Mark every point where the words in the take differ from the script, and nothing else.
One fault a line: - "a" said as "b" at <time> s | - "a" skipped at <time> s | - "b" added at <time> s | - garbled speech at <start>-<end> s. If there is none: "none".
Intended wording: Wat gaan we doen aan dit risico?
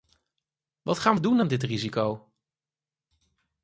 none